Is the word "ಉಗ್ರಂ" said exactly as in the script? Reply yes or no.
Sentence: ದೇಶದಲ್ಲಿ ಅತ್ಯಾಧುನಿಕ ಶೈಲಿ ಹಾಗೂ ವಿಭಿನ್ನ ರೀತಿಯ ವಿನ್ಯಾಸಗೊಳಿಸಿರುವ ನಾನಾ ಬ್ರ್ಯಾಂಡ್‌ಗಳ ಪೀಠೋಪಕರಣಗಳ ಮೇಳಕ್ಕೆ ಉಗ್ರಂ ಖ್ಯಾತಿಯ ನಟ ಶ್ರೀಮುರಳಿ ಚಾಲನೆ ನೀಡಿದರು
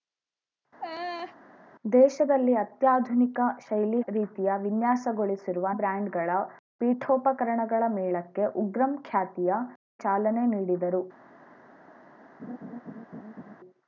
yes